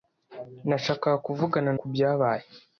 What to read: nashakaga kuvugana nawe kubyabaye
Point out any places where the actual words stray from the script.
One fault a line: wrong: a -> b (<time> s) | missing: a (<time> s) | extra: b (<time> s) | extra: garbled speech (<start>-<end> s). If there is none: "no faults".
missing: nawe (1.7 s)